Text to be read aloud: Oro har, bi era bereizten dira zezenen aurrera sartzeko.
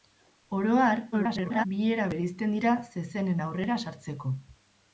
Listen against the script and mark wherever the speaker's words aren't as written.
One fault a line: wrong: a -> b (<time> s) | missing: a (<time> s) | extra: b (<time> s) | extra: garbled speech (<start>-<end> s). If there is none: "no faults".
extra: garbled speech (1.1-1.6 s)